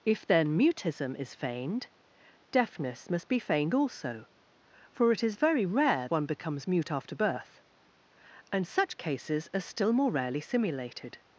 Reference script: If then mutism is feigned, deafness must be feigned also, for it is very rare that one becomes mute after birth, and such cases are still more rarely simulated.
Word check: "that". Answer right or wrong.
wrong